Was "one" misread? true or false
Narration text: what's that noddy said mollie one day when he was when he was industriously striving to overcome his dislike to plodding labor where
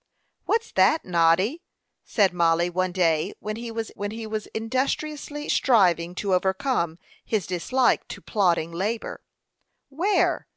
false